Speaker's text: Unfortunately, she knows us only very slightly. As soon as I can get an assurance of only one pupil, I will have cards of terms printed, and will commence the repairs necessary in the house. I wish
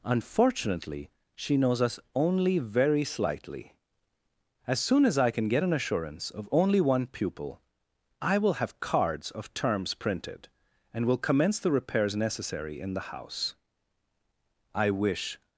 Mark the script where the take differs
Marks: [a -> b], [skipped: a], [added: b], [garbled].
Unfortunately, she knows us only very slightly. As soon as I can get an assurance of only one pupil, I will have cards of terms printed, and will commence the repairs necessary in the house. I wish